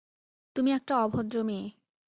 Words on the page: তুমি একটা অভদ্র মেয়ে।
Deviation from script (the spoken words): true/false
false